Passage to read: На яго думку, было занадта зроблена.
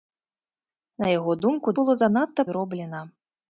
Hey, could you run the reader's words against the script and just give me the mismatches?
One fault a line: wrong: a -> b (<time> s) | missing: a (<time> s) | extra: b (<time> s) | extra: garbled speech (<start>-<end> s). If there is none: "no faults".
no faults